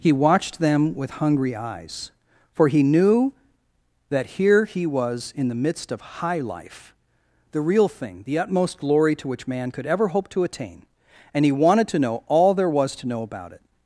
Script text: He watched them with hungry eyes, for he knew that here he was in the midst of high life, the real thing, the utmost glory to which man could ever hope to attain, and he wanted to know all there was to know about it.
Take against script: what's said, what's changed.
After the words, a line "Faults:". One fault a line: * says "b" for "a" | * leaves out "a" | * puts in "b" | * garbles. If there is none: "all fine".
He watched them with hungry eyes, for he knew that here he was in the midst of high life, the real thing, the utmost glory to which man could ever hope to attain, and he wanted to know all there was to know about it.
Faults:
all fine